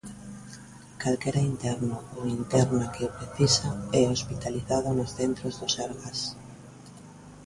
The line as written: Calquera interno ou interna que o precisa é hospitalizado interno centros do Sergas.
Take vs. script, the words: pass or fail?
fail